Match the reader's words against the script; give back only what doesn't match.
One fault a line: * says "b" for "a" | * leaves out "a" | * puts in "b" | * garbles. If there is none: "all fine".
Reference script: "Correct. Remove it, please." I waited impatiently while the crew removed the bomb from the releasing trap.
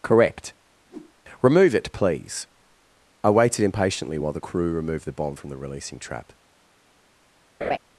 all fine